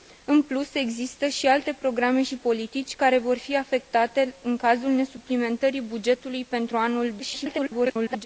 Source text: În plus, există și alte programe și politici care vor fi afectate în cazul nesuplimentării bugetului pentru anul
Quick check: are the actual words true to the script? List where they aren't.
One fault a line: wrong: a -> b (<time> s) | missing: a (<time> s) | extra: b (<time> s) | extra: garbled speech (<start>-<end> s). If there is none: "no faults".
extra: garbled speech (7.2-8.3 s)